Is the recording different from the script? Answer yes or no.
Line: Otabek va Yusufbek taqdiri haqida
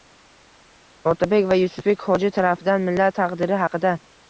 yes